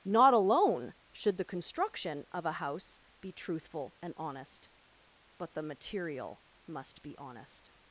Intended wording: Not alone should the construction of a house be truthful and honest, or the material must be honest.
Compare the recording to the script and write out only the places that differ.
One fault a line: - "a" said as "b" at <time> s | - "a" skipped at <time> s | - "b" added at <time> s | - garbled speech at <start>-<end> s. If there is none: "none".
- "or" said as "but" at 5.4 s